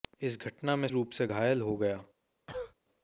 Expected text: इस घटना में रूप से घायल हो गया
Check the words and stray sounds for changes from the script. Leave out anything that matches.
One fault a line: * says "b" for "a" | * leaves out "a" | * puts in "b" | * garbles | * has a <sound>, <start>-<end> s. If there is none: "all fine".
* has a cough, 2.5-2.7 s